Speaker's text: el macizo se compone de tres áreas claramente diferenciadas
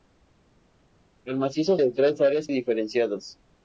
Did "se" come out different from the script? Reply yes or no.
yes